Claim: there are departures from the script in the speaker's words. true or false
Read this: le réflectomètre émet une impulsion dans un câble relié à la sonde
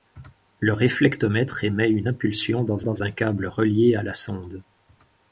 true